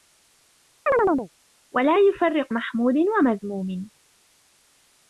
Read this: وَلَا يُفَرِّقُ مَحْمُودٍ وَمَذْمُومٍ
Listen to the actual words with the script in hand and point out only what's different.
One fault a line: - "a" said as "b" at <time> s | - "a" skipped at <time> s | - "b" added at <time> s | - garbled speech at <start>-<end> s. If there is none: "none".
none